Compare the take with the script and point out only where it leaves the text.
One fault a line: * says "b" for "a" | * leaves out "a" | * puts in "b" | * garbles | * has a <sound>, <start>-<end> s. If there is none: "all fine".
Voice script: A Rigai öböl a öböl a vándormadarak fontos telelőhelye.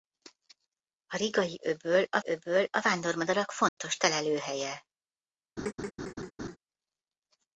* has a dropout, 3.7-3.8 s
* has a laugh, 5.6-6.6 s